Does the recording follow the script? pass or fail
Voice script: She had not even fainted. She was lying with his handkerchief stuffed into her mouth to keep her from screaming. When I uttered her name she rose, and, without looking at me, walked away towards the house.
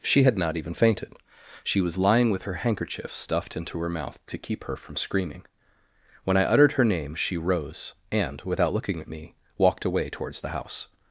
fail